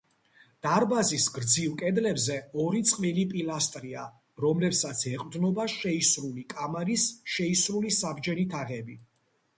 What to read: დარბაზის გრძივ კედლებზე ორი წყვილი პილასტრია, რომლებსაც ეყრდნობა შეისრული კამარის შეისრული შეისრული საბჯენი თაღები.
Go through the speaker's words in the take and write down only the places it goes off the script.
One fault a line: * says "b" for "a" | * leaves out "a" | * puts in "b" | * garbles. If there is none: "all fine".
* leaves out "შეისრული"